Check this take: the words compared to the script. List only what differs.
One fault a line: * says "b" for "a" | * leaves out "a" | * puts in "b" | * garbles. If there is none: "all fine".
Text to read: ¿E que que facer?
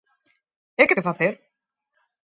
all fine